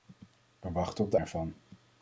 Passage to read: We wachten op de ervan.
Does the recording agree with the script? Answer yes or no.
yes